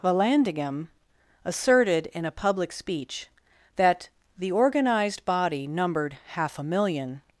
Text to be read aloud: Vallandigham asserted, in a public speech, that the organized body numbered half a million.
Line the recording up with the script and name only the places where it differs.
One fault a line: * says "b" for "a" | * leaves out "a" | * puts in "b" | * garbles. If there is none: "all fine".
all fine